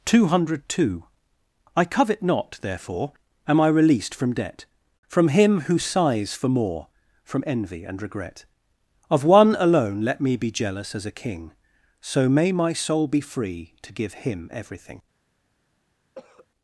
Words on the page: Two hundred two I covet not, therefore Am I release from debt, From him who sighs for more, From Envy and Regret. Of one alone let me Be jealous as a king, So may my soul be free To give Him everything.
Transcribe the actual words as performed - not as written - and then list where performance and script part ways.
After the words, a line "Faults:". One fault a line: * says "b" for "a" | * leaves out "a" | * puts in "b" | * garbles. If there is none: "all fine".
Two hundred two I covet not, therefore Am I released from debt, From him who sighs for more, From Envy and Regret. Of one alone let me Be jealous as a king, So may my soul be free To give Him everything.
Faults:
* says "released" for "release"